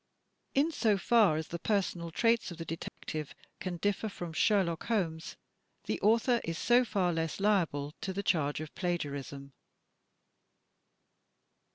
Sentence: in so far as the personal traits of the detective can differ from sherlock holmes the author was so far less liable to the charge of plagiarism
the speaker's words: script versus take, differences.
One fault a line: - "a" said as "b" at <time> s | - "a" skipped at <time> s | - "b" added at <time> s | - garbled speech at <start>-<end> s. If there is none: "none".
- "was" said as "is" at 6.4 s